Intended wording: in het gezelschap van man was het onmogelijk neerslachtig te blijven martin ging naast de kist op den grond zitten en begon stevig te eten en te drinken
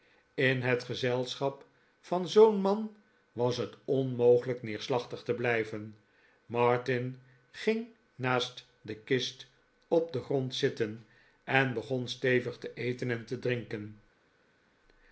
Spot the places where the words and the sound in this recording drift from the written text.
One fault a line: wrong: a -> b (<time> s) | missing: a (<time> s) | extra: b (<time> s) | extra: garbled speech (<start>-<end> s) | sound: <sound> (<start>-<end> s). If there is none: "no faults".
extra: zoo'n (2.3 s)